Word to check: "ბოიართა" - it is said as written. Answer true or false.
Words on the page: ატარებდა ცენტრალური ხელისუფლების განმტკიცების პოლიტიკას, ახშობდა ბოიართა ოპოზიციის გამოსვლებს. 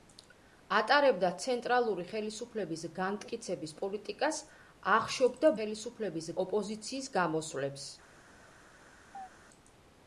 false